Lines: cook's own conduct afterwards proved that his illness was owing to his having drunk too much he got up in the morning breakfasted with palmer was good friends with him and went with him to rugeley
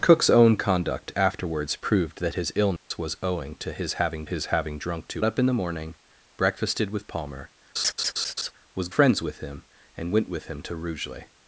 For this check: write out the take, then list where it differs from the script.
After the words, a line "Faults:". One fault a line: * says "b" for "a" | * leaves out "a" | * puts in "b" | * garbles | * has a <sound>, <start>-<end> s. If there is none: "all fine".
cook's own conduct afterwards proved that his illness was owing to his having his having drunk too up in the morning breakfasted with palmer was friends with him and went with him to rugeley
Faults:
* has a dropout, 2.8-2.9 s
* puts in "his having"
* leaves out "much he got"
* has a laugh, 7.8-8.5 s
* leaves out "good"